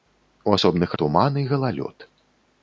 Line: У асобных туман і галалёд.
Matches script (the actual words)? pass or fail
pass